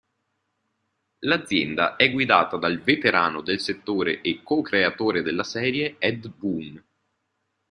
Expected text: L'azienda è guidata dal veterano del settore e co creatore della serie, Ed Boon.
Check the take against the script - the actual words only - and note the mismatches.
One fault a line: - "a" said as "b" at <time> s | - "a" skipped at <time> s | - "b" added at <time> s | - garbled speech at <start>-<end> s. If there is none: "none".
none